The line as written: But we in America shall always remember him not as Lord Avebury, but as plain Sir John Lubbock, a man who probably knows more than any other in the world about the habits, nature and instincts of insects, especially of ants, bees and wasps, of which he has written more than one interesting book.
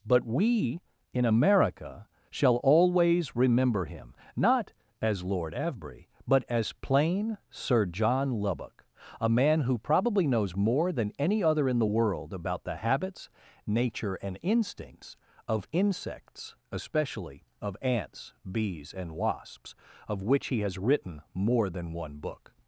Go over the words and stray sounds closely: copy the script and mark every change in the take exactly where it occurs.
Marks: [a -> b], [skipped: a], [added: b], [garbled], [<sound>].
But we in America shall always remember him not as Lord Avebury, but as plain Sir John Lubbock, a man who probably knows more than any other in the world about the habits, nature and instincts of insects, especially of ants, bees and wasps, of which he has written more than one [skipped: interesting] book.